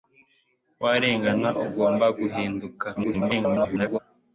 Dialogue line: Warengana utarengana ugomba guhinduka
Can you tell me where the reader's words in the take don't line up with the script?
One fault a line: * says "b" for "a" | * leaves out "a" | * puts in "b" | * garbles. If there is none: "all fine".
* leaves out "utarengana"
* garbles